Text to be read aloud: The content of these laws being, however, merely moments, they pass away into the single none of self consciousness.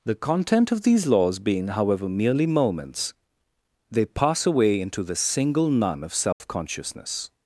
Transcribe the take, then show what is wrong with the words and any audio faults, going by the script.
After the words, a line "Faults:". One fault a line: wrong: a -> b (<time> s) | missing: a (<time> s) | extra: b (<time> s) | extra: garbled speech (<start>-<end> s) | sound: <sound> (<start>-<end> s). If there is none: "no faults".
The content of these laws being, however, merely moments, they pass away into the single none of self consciousness.
Faults:
sound: dropout (6.3-6.4 s)